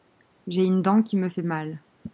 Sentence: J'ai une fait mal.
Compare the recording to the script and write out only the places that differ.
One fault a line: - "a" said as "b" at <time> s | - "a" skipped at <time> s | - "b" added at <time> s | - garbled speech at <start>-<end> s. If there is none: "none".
- "dent qui me" added at 0.8 s